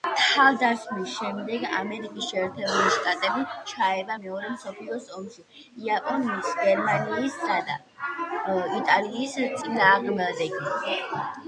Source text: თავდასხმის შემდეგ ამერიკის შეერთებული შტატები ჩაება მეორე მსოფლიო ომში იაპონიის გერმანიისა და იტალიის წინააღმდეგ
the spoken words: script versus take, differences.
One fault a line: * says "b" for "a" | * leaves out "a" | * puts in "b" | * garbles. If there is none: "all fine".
all fine